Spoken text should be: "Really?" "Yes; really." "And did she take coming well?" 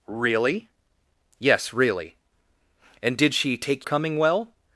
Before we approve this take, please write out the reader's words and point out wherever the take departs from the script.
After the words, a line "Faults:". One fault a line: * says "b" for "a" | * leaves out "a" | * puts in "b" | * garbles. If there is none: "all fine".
"Really?" "Yes; really." "And did she take coming well?"
Faults:
all fine